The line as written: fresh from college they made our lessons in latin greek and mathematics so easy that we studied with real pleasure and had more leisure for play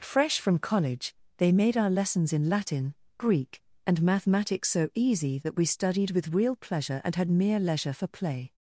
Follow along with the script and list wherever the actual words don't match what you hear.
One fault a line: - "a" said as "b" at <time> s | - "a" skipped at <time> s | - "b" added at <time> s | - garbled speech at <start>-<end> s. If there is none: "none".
- "more" said as "mere" at 7.3 s